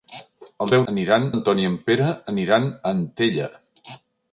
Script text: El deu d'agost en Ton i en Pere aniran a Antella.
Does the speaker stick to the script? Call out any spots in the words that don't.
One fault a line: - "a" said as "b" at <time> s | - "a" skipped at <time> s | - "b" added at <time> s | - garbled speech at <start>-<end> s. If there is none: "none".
- "d'agost" said as "aniran" at 0.9 s